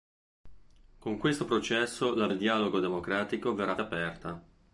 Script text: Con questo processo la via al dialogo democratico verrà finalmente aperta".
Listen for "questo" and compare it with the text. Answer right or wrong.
right